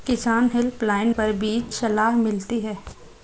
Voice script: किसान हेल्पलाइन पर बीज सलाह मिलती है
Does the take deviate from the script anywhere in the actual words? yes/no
no